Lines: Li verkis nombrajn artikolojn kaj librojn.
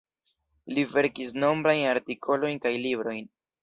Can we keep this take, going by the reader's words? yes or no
yes